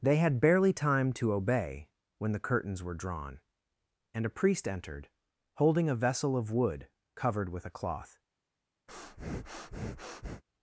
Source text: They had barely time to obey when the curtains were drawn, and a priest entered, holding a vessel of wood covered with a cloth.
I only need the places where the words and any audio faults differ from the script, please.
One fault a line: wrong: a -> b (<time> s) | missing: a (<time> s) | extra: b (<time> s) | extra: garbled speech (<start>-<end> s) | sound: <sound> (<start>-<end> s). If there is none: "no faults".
sound: breath (8.9-10.4 s)